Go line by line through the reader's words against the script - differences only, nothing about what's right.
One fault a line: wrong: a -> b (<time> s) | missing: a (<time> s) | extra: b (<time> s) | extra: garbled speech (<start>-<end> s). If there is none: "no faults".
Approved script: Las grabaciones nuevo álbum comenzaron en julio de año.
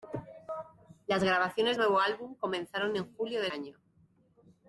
no faults